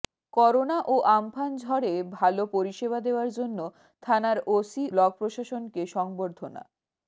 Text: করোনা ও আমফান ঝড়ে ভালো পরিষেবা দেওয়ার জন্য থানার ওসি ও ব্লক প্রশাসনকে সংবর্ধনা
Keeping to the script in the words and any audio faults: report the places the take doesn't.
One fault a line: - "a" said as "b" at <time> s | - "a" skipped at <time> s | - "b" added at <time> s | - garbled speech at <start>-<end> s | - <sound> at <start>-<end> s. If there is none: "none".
- "ও" skipped at 4.8 s